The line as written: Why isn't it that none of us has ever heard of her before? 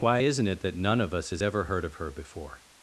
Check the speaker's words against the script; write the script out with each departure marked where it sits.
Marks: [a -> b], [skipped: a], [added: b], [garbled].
Why isn't it that none of us has ever heard of her before?